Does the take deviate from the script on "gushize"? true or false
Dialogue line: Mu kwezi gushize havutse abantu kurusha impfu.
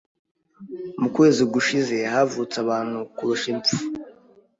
false